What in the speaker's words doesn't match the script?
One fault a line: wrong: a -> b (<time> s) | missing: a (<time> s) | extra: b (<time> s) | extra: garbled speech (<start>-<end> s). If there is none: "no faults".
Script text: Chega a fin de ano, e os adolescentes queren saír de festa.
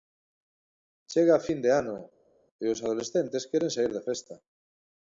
no faults